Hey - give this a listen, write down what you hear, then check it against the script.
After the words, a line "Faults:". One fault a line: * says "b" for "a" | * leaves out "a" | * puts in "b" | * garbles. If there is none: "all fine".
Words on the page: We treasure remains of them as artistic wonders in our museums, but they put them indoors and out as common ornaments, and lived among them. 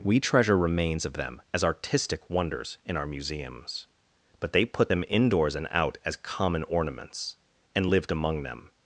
We treasure remains of them as artistic wonders in our museums, but they put them indoors and out as common ornaments, and lived among them.
Faults:
all fine